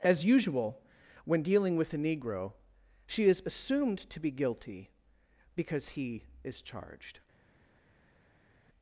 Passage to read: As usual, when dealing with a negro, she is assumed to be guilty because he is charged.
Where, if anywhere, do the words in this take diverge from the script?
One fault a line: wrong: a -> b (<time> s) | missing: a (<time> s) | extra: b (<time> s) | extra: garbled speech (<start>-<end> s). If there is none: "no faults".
no faults